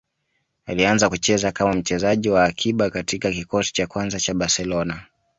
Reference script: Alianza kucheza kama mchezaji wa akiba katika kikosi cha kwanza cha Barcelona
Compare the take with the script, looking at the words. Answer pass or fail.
pass